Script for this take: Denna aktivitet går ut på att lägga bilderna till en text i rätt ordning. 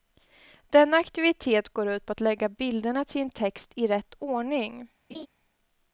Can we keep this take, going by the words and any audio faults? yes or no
no